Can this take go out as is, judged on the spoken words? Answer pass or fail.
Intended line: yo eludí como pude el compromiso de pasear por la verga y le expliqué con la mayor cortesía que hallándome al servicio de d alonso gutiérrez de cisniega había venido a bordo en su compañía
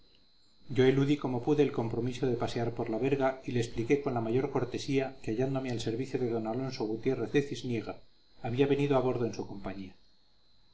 pass